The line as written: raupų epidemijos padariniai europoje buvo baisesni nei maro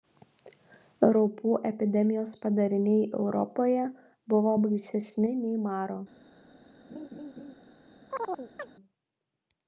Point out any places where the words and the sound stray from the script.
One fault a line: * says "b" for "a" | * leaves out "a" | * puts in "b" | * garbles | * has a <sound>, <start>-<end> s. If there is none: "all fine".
* has a laugh, 6.9-7.5 s
* has a chirp, 8.1-8.7 s